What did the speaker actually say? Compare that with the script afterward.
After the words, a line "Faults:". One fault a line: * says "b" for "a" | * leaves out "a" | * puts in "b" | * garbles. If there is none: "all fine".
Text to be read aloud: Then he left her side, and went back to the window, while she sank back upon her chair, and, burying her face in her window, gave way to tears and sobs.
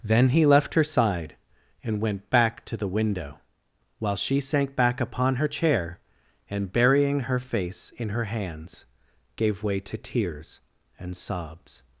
Then he left her side, and went back to the window, while she sank back upon her chair, and, burying her face in her hands, gave way to tears and sobs.
Faults:
* says "hands" for "window"